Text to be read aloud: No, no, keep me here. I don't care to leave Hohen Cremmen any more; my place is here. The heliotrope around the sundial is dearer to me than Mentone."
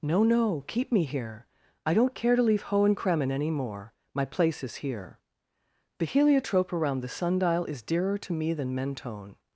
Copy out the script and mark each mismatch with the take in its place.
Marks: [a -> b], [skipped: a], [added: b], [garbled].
No, no, keep me here. I don't care to leave Hohen Cremmen any more; my place is here. The heliotrope around the sundial is dearer to me than Mentone."